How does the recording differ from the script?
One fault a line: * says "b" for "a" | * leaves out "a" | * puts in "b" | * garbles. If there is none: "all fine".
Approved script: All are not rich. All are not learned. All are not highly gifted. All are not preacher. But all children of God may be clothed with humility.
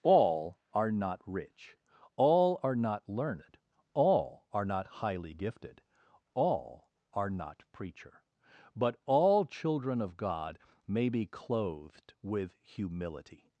all fine